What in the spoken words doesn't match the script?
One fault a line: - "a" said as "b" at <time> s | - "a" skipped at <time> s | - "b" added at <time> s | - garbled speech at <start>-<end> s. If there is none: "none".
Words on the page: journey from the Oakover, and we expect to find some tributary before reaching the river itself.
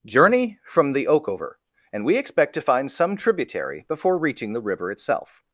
none